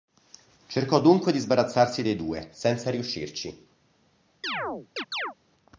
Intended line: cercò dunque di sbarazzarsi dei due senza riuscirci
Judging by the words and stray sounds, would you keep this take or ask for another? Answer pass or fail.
fail